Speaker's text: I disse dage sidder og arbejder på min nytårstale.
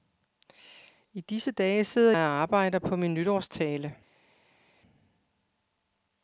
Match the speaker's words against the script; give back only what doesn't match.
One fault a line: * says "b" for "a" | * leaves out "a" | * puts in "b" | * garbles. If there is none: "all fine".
all fine